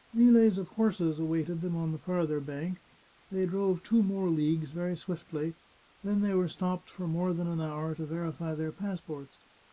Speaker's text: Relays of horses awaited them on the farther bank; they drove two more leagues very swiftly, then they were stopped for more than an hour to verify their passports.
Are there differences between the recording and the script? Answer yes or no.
no